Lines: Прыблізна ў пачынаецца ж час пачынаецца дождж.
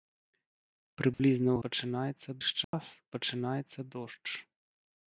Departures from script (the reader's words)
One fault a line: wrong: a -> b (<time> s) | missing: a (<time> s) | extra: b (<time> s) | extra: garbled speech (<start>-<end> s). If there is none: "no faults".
no faults